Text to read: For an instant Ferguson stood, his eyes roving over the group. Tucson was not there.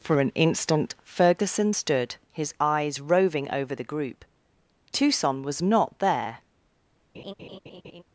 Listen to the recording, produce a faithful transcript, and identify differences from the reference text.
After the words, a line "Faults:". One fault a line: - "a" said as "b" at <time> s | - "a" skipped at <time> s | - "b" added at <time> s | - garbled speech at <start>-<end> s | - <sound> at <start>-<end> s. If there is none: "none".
For an instant Ferguson stood, his eyes roving over the group. Tucson was not there.
Faults:
- laugh at 7.1-8.0 s